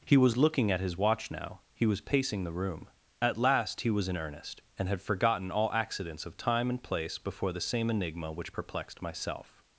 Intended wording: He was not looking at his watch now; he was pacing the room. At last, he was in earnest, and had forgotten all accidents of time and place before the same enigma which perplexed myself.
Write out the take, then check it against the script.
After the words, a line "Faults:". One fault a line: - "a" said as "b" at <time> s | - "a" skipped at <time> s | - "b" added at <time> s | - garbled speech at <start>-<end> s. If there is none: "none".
He was looking at his watch now; he was pacing the room. At last, he was in earnest, and had forgotten all accidents of time and place before the same enigma which perplexed myself.
Faults:
- "not" skipped at 0.4 s